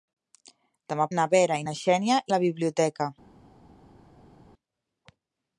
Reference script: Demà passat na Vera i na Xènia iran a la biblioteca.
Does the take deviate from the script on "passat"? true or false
true